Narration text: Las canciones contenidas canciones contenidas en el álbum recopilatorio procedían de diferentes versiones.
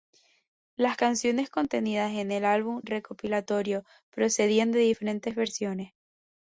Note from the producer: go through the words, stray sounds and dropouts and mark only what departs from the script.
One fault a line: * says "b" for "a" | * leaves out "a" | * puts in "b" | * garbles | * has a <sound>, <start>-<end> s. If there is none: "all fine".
* leaves out "canciones contenidas"